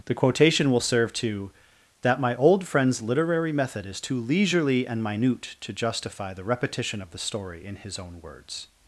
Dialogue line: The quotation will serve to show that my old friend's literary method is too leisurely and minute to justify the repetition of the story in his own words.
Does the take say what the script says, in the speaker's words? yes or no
no